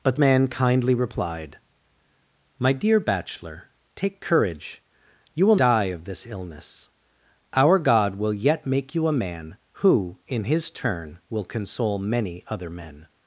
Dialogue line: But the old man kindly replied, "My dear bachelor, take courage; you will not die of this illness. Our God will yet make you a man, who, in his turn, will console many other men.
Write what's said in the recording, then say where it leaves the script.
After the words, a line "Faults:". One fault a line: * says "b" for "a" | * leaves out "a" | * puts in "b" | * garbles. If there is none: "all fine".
But man kindly replied, "My dear bachelor, take courage; you will die of this illness. Our God will yet make you a man, who, in his turn, will console many other men.
Faults:
* leaves out "the old"
* leaves out "not"